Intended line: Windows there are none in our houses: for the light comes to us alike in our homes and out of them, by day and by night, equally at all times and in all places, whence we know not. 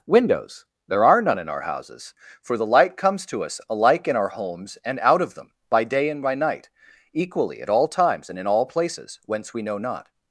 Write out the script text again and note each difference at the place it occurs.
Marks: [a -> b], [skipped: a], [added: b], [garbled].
Windows there are none in our houses: for the light comes to us alike in our homes and out of them, by day and by night, equally at all times and in all places, whence we know not.